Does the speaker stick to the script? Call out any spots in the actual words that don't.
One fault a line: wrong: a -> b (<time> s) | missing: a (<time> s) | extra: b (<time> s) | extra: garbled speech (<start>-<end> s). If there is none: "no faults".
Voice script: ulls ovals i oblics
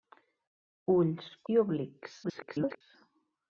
missing: ovals (1.3 s)
extra: garbled speech (2.2-2.8 s)